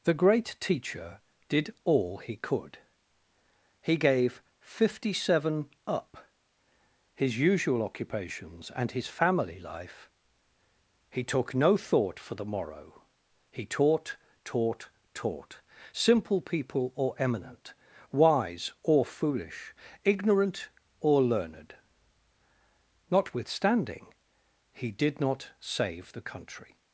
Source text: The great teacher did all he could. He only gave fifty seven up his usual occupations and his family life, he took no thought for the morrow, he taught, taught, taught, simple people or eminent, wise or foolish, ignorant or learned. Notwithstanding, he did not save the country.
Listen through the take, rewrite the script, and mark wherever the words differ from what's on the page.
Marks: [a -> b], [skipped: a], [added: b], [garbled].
The great teacher did all he could. He [skipped: only] gave fifty seven up his usual occupations and his family life, he took no thought for the morrow, he taught, taught, taught, simple people or eminent, wise or foolish, ignorant or learned. Notwithstanding, he did not save the country.